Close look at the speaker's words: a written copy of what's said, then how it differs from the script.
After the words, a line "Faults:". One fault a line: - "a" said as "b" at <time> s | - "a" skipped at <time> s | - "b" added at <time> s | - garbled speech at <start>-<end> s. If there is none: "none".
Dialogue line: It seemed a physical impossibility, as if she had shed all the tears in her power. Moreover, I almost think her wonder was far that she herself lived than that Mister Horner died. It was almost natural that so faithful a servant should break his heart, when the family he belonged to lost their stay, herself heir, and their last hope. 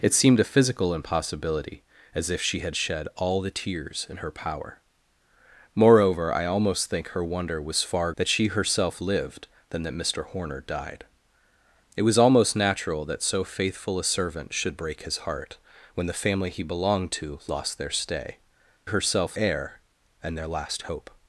It seemed a physical impossibility, as if she had shed all the tears in her power. Moreover, I almost think her wonder was far that she herself lived than that Mister Horner died. It was almost natural that so faithful a servant should break his heart, when the family he belonged to lost their stay, herself heir, and their last hope.
Faults:
none